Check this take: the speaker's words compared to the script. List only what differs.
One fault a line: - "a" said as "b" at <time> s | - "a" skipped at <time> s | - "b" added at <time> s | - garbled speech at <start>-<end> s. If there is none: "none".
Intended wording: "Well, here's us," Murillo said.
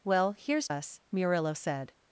none